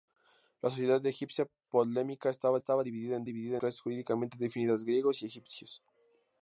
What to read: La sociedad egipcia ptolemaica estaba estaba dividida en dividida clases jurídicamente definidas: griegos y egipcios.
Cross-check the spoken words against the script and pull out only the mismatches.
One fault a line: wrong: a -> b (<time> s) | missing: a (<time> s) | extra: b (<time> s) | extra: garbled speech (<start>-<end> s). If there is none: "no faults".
no faults